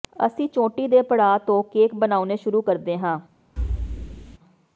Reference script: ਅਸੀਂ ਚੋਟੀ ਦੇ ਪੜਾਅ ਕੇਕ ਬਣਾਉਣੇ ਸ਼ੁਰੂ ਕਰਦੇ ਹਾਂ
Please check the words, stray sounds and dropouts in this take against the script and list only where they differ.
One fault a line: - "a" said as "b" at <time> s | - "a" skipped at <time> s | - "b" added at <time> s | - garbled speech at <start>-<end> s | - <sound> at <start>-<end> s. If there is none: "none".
- "ਤੋਂ" added at 1.4 s
- thud at 3.6-4.4 s